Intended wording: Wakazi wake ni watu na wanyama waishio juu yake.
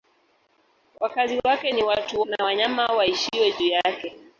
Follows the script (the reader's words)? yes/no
yes